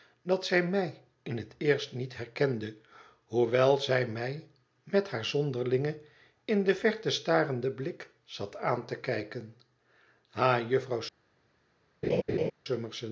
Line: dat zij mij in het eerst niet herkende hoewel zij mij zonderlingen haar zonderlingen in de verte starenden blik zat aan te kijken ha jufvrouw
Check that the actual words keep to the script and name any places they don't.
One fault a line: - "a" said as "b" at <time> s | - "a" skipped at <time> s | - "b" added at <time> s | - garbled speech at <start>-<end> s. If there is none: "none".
- "zonderlingen" said as "met" at 4.8 s